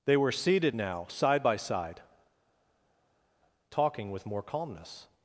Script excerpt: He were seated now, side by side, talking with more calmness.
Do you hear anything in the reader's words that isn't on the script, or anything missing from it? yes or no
yes